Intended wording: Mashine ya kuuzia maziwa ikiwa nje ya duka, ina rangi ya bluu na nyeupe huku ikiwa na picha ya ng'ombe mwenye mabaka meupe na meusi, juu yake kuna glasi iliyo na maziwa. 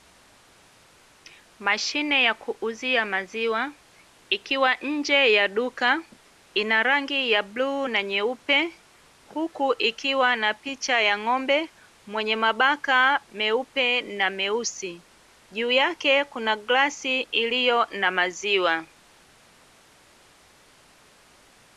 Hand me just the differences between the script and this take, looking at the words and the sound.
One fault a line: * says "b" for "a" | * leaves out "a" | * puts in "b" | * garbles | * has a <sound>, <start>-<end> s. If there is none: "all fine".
all fine